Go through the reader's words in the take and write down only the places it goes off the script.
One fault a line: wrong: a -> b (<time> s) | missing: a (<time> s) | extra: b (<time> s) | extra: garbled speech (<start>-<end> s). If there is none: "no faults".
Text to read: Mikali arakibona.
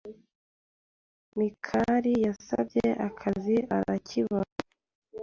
extra: yasabye akazi (2.2 s)